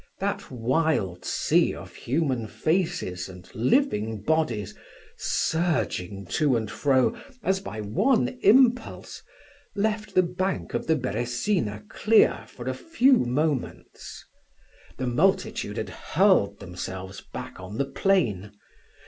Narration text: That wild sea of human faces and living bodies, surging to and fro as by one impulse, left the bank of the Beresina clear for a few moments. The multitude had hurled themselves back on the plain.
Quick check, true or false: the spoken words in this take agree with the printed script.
true